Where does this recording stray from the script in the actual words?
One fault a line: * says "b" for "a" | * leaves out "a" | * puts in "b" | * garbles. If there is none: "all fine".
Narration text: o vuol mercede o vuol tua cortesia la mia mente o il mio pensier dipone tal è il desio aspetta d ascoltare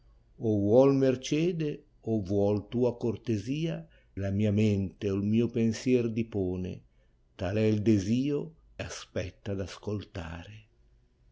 all fine